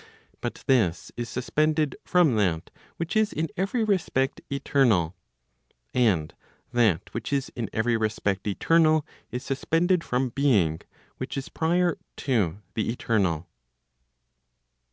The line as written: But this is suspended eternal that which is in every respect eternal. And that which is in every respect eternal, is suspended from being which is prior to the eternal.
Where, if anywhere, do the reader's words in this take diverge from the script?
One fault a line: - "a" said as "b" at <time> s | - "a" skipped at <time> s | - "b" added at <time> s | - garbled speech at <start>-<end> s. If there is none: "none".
- "eternal" said as "from" at 2.0 s